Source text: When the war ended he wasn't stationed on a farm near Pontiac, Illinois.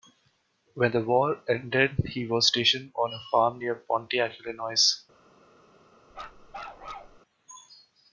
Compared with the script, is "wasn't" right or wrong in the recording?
wrong